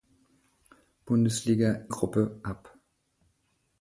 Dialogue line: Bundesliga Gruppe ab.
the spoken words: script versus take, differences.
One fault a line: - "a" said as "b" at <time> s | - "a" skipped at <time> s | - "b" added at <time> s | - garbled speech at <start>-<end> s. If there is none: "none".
none